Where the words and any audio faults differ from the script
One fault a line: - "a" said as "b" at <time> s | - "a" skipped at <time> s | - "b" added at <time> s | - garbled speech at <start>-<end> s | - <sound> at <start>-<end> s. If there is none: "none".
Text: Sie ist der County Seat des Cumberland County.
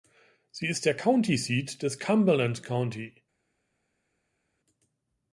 none